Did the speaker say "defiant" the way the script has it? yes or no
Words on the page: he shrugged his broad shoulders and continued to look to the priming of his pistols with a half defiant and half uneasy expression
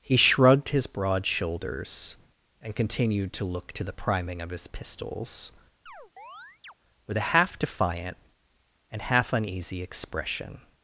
yes